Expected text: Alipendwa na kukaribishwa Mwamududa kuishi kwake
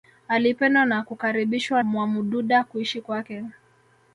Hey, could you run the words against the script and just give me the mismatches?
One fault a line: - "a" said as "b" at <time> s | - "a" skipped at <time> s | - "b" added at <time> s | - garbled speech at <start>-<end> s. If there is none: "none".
none